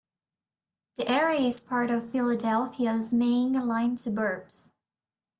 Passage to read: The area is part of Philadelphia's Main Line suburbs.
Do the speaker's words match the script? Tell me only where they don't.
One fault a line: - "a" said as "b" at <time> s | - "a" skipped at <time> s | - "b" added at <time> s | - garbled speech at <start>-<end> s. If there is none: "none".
none